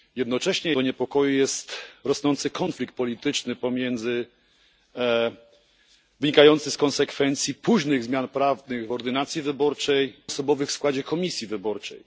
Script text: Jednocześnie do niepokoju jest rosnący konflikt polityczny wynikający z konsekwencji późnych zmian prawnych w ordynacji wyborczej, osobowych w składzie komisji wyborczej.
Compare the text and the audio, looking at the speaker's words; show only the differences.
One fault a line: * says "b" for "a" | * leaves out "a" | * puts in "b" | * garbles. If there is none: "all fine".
all fine